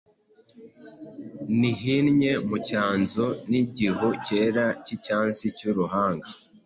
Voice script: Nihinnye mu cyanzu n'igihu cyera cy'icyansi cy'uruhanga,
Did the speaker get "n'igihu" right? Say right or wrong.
right